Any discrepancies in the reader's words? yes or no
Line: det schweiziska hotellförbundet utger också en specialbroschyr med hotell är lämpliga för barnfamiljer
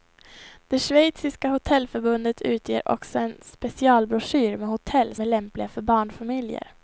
no